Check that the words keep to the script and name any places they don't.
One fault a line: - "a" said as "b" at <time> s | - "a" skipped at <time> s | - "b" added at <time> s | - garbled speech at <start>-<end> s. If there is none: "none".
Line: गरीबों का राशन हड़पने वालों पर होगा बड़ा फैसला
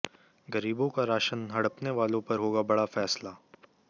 none